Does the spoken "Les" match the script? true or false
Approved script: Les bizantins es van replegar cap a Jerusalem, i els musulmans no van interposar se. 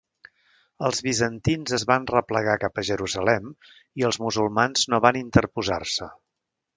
false